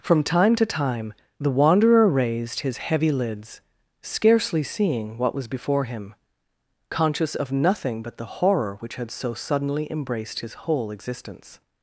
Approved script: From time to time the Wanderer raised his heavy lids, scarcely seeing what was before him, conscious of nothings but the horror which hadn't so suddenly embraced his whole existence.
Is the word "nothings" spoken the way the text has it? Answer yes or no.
no